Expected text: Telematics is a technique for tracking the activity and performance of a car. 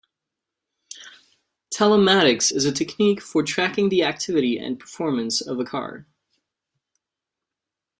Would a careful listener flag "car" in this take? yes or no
no